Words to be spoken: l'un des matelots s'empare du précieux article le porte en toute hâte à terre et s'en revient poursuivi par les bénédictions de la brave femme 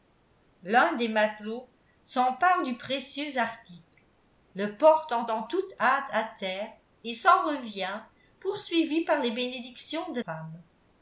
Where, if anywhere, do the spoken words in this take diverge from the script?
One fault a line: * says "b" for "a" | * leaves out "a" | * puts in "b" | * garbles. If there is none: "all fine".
* puts in "en"
* leaves out "la brave"